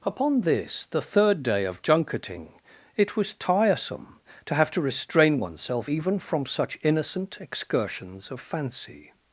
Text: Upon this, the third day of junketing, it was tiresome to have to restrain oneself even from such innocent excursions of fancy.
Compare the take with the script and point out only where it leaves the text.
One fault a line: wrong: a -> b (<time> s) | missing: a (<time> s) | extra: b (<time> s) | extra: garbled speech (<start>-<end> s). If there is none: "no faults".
no faults